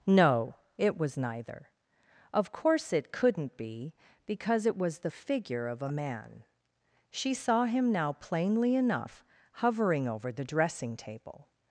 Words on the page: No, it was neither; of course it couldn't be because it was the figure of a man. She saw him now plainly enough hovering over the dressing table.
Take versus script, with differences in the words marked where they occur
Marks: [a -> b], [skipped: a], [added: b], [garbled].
No, it was neither; of course it couldn't be because it was the figure of a man. She saw him now plainly enough hovering over the dressing table.